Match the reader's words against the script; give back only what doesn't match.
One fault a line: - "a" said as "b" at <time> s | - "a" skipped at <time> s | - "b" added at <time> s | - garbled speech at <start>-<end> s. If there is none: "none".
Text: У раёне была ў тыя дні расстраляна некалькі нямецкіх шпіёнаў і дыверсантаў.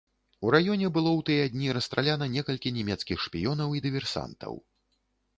- "была" said as "было" at 0.9 s